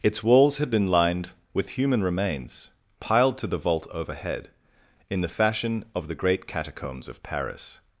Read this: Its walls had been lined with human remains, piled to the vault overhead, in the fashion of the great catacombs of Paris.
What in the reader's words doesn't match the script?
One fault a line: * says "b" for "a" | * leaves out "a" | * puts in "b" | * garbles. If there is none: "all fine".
all fine